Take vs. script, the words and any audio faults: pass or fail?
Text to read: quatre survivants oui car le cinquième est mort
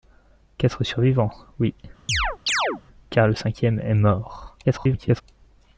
fail